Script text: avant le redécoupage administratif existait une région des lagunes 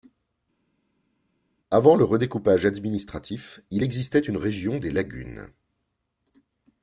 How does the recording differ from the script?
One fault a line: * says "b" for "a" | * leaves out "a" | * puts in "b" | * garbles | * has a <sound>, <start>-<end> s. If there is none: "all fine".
* puts in "il"